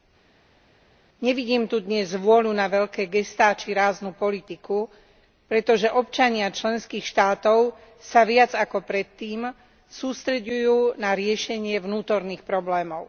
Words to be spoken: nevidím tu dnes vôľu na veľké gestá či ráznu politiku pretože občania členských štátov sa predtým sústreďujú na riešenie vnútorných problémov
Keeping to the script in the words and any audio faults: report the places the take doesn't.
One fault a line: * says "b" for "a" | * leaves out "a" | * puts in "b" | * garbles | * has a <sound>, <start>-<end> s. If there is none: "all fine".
* puts in "viac ako"